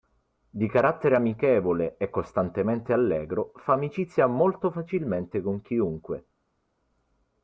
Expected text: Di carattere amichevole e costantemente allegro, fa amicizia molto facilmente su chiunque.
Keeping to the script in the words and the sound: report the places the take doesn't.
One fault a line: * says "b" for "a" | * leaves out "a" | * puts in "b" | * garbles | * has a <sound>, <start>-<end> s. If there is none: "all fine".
* says "con" for "su"